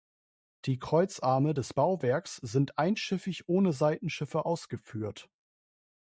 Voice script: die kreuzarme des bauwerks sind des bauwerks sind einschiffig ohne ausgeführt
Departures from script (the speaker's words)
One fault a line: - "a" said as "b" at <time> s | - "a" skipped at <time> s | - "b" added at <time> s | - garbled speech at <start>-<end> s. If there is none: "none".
- "des bauwerks sind" skipped at 2.8 s
- "seitenschiffe" added at 3.7 s